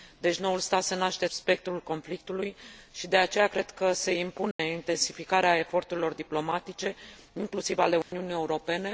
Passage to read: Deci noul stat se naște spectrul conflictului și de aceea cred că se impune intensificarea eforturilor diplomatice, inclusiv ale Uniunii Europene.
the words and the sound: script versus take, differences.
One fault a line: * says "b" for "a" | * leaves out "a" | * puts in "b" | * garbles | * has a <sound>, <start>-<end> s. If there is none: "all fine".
* has a dropout, 4.5-4.6 s
* has a dropout, 8.0-8.1 s